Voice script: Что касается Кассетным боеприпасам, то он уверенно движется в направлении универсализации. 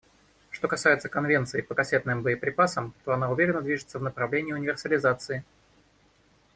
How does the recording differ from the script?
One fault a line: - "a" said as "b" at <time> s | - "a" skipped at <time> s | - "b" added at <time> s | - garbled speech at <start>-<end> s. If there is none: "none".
- "Конвенции по" added at 1.1 s
- "он" said as "она" at 3.1 s